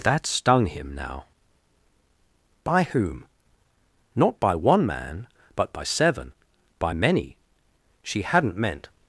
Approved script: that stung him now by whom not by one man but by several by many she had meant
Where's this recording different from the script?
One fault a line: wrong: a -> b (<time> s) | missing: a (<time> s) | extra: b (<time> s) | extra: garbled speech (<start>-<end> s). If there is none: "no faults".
wrong: several -> seven (5.8 s)
wrong: had -> hadn't (8.2 s)